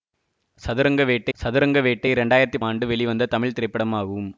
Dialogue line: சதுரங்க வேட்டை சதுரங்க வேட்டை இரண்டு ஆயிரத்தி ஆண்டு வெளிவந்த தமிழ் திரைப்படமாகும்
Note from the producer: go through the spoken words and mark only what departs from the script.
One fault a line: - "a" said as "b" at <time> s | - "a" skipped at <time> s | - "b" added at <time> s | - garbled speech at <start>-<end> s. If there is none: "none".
none